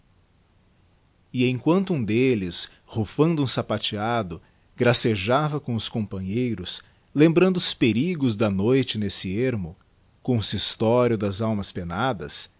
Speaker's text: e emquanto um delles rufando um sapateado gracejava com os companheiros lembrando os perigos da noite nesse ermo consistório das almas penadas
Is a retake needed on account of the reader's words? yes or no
no